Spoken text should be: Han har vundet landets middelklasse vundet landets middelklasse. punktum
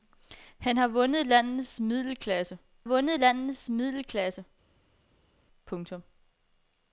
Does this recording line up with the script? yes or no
yes